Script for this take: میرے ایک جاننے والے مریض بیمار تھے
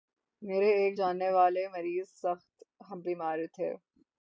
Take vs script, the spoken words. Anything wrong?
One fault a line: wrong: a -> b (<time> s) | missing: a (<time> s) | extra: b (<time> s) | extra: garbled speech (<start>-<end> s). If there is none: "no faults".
extra: سخت (2.1 s)